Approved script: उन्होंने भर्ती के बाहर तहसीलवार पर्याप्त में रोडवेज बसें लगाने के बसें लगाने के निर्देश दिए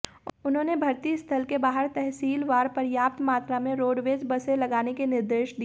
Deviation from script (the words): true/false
true